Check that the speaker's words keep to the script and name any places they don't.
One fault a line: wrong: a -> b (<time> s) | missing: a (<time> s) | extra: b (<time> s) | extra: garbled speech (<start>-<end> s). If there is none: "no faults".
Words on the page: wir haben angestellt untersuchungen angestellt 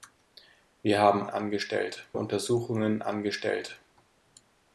no faults